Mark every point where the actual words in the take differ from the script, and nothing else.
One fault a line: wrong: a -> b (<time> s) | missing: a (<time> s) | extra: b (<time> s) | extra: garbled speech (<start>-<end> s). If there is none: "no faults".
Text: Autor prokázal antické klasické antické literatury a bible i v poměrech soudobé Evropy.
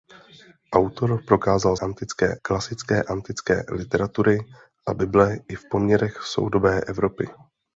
no faults